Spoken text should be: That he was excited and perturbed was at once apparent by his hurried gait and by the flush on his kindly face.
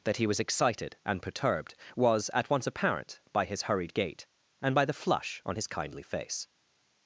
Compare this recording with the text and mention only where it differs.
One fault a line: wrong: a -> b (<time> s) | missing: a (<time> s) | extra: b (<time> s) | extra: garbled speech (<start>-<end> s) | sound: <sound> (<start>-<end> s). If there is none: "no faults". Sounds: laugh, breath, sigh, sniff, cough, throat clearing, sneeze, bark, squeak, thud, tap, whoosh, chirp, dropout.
no faults